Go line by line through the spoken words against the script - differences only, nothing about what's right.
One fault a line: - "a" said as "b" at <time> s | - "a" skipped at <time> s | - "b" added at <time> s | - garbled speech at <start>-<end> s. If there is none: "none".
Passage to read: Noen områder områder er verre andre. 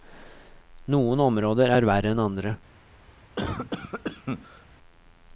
- "områder" skipped at 1.7 s
- "enn" added at 2.1 s